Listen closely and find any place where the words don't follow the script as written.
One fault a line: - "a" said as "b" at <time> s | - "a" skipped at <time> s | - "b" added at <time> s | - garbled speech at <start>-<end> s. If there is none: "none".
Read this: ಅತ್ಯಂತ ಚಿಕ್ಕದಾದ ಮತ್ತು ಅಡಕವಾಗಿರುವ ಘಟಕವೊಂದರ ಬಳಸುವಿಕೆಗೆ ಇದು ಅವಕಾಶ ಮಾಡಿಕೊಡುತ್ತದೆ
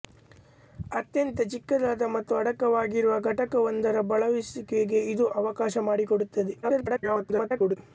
- garbled speech at 6.6-7.8 s